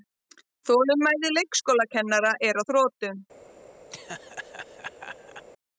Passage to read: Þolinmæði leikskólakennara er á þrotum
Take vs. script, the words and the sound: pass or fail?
fail